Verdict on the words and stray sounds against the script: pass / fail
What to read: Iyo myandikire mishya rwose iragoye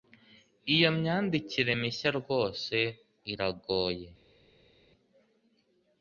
pass